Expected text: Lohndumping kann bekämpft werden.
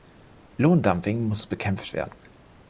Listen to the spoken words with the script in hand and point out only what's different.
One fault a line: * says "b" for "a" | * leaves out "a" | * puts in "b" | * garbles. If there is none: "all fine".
* says "muss" for "kann"